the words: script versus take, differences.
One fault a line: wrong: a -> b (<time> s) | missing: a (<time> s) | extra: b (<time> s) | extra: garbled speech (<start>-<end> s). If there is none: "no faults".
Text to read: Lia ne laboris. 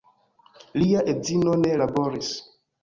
extra: edzino (1.1 s)